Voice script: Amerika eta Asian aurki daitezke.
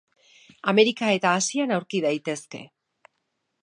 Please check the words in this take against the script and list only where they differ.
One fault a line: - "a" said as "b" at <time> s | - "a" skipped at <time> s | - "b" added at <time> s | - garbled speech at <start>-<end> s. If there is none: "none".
none